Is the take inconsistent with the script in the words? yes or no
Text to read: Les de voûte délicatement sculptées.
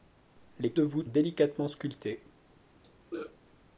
no